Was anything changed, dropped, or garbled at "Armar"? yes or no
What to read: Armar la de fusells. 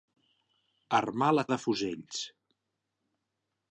no